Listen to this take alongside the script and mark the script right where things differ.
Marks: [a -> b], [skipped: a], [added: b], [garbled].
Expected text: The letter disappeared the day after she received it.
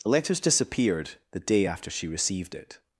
The [letter -> letters] disappeared the day after she received it.